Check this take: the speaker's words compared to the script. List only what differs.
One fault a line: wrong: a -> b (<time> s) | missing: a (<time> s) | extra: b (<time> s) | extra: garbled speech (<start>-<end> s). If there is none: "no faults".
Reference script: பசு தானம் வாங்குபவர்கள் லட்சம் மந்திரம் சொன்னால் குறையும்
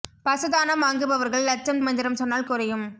no faults